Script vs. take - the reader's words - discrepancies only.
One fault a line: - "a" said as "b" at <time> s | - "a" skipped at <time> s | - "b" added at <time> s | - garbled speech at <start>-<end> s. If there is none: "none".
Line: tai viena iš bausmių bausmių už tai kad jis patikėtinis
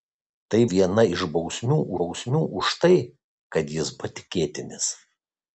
none